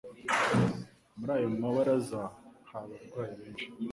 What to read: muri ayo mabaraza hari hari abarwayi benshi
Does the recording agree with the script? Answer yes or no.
no